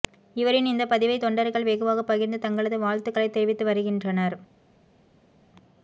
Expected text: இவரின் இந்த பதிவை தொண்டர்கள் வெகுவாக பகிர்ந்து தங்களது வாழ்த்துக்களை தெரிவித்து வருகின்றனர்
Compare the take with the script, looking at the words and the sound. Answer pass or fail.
pass